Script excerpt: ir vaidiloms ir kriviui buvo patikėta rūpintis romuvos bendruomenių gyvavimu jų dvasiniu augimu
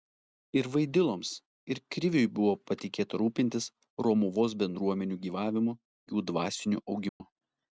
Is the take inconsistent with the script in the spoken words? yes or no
no